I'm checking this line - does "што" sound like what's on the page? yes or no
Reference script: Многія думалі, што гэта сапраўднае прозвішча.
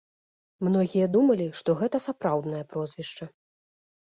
yes